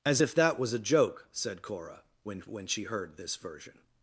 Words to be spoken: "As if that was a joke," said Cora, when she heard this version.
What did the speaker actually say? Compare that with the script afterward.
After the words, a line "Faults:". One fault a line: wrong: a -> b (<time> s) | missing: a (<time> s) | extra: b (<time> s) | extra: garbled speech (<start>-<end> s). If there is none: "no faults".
"As if that was a joke," said Cora, when when she heard this version.
Faults:
extra: when (2.4 s)